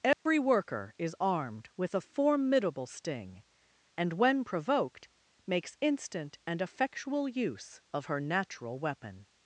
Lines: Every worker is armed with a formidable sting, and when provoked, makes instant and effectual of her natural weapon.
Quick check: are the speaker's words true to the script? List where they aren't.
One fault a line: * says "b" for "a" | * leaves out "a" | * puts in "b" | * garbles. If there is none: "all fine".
* puts in "use"